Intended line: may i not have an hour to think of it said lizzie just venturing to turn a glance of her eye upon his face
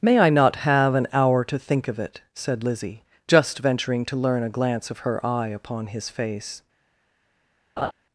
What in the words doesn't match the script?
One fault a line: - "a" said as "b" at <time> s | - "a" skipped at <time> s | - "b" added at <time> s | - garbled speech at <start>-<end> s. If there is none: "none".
- "turn" said as "learn" at 4.2 s